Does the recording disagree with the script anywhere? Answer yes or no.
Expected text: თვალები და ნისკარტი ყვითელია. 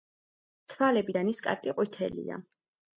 no